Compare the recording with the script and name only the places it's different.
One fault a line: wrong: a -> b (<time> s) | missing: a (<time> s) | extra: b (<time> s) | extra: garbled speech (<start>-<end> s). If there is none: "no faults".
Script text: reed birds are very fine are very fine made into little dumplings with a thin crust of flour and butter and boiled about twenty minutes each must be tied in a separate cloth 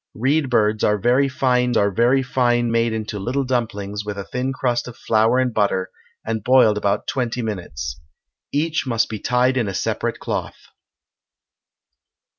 no faults